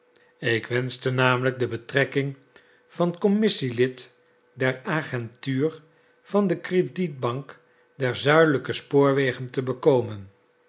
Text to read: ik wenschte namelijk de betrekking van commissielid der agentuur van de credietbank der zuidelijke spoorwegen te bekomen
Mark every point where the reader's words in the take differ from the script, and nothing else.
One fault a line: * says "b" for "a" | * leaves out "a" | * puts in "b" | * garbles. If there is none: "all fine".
all fine